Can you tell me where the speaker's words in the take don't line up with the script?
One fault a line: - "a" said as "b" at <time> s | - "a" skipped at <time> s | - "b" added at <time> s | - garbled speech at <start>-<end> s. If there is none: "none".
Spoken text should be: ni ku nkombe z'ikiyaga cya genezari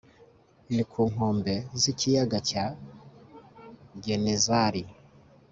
none